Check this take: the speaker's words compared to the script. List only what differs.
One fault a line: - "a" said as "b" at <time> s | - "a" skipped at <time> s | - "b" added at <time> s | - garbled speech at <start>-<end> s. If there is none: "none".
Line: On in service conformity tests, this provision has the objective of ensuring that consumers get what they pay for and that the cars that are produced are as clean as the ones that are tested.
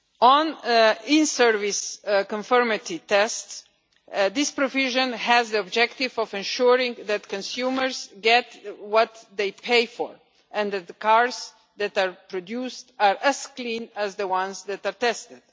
none